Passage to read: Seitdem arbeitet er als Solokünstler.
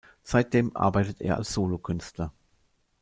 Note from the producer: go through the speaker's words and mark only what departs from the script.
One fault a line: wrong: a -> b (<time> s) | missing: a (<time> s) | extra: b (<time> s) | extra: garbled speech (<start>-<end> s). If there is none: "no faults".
no faults